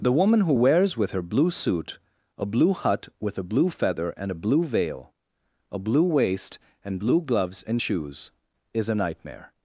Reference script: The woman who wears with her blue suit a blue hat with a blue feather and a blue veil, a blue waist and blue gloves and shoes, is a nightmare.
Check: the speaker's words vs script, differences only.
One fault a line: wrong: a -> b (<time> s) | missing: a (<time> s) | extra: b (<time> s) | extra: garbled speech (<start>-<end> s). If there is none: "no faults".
wrong: hat -> hut (2.7 s)